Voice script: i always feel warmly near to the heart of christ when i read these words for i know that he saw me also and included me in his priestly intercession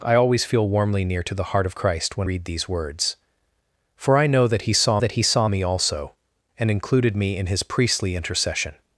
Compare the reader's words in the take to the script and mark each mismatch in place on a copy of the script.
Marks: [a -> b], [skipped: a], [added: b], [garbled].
i always feel warmly near to the heart of christ when [skipped: i] read these words for i know that he saw [added: that he saw] me also and included me in his priestly intercession